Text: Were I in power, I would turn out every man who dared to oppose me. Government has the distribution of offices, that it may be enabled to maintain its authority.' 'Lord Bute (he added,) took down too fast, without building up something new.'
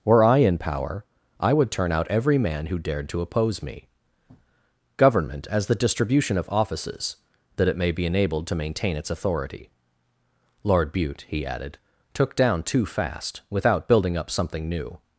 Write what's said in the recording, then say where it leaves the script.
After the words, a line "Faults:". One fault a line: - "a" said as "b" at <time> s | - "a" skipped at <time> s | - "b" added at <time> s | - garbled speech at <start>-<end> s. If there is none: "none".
Were I in power, I would turn out every man who dared to oppose me. Government as the distribution of offices, that it may be enabled to maintain its authority.' 'Lord Bute (he added,) took down too fast, without building up something new.'
Faults:
- "has" said as "as" at 5.5 s